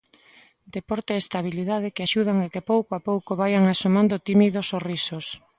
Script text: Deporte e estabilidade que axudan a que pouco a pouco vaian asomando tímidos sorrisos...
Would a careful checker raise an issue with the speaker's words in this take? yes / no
no